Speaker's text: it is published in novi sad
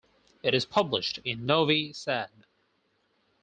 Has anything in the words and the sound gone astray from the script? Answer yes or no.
no